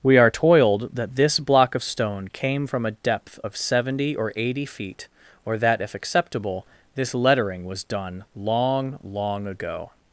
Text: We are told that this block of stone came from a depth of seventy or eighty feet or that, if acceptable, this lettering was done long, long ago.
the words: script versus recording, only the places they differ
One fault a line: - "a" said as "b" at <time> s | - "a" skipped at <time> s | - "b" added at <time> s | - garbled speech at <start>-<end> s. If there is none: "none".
- "told" said as "toiled" at 0.3 s